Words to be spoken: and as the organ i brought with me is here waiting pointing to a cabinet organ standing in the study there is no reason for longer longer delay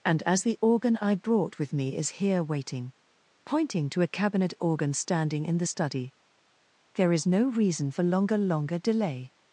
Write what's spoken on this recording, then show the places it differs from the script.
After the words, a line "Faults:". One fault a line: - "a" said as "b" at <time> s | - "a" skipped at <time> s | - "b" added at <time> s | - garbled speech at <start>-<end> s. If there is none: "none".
and as the organ i brought with me is here waiting pointing to a cabinet organ standing in the study there is no reason for longer longer delay
Faults:
none